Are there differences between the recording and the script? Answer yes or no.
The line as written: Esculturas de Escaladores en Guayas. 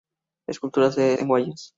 yes